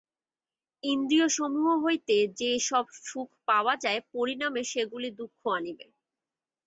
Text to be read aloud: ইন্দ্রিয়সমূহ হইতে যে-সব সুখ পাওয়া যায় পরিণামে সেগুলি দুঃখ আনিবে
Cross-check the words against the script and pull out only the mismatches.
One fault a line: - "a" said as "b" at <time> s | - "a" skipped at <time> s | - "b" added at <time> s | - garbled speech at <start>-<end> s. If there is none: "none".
none